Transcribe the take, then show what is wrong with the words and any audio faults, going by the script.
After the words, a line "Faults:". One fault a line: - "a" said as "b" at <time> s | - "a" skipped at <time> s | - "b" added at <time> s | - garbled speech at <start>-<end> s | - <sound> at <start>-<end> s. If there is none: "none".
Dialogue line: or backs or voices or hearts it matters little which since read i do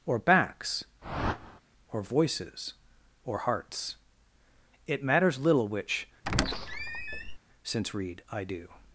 or backs or voices or hearts it matters little which since read i do
Faults:
- whoosh at 1.0-1.6 s
- squeak at 6.2-7.4 s